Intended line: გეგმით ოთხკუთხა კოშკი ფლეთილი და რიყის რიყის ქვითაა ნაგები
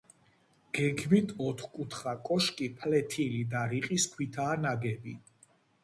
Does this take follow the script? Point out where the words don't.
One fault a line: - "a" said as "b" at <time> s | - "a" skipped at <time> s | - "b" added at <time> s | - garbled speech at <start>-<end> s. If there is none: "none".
- "რიყის" skipped at 4.1 s